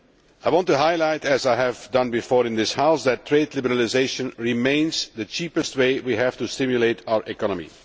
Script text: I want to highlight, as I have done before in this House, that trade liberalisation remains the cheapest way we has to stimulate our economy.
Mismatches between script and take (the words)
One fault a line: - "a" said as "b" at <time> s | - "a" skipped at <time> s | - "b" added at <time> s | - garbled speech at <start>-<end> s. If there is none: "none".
- "has" said as "have" at 6.2 s